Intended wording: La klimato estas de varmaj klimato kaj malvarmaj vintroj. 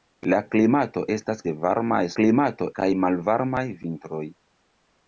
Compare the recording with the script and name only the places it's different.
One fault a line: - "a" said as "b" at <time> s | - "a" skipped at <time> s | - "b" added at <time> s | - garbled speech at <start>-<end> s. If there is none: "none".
none